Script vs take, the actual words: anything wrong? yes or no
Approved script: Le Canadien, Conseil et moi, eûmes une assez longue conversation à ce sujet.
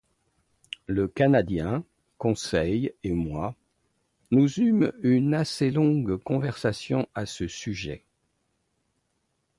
yes